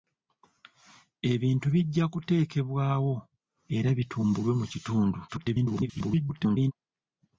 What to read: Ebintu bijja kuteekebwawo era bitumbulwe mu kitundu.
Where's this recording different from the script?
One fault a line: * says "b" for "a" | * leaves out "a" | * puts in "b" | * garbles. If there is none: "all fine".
* garbles